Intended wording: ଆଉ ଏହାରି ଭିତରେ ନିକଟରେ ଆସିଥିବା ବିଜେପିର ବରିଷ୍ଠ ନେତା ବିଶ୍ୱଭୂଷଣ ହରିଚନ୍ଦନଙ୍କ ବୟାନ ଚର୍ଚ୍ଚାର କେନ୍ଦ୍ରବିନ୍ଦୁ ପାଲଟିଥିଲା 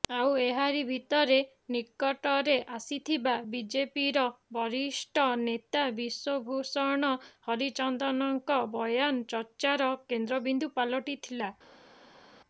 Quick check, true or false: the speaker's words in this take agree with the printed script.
true